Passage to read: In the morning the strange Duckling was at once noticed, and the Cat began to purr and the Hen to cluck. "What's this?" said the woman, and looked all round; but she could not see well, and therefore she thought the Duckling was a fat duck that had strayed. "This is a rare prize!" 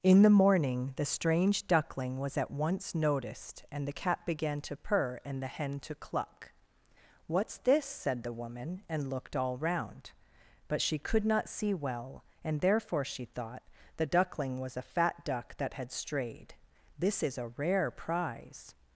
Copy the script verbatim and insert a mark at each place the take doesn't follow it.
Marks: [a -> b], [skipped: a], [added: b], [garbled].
In the morning the strange Duckling was at once noticed, and the Cat began to purr and the Hen to cluck. "What's this?" said the woman, and looked all round; but she could not see well, and therefore she thought the Duckling was a fat duck that had strayed. "This is a rare prize!"